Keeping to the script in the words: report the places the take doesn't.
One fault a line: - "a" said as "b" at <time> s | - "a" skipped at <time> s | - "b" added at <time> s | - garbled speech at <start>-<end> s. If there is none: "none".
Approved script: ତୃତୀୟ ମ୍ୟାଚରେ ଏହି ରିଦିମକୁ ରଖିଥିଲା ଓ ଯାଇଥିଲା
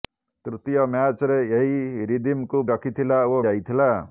none